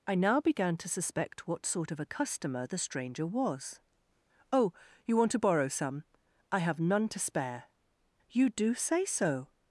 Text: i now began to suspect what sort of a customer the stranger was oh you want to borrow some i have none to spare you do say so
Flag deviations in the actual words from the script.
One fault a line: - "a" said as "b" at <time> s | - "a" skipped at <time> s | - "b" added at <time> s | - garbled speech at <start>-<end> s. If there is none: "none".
none